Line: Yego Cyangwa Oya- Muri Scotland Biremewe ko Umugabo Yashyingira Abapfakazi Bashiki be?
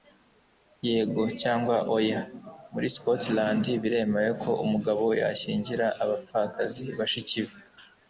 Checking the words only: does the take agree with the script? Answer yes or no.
yes